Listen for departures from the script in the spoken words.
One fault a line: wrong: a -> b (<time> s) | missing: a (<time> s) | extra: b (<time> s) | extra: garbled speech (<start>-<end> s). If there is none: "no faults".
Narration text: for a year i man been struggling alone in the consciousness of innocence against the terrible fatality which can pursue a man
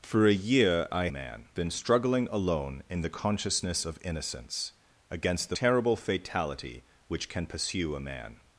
no faults